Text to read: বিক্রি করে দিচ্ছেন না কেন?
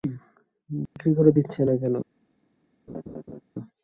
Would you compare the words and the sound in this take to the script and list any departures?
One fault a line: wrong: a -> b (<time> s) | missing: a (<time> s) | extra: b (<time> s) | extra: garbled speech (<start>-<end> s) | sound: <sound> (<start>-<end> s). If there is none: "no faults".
sound: dropout (0.9-1.0 s)
sound: laugh (2.9-3.4 s)